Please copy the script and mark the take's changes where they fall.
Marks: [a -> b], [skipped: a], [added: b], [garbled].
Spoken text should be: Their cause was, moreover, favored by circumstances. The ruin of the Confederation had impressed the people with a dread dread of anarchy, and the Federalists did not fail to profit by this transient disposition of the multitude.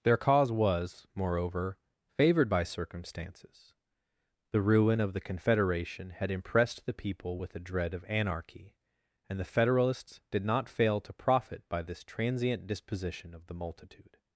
Their cause was, moreover, favored by circumstances. The ruin of the Confederation had impressed the people with a dread [skipped: dread] of anarchy, and the Federalists did not fail to profit by this transient disposition of the multitude.